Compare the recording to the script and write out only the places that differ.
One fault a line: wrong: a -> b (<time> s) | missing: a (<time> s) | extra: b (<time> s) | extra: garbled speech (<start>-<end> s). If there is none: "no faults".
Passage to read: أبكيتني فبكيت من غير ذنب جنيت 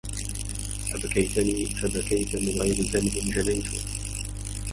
no faults